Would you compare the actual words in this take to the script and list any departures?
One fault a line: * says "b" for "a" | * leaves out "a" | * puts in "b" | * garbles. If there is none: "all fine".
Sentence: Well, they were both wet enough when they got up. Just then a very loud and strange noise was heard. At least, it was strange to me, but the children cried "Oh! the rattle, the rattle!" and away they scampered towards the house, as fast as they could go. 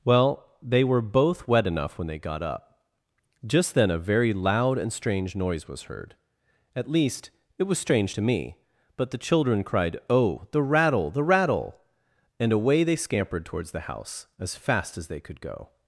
all fine